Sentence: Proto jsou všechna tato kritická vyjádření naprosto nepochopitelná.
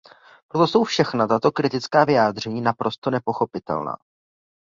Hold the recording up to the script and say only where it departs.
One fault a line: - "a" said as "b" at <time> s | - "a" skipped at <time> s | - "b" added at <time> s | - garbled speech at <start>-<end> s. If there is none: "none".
none